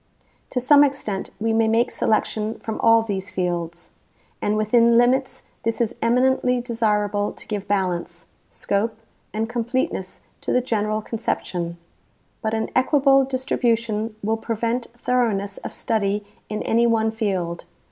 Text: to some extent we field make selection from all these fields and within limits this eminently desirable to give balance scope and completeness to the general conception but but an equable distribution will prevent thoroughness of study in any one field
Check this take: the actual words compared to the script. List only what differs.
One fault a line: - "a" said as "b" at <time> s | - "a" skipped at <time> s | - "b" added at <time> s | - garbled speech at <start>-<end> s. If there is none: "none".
- "field" said as "may" at 1.5 s
- "is" added at 5.8 s
- "but" skipped at 12.6 s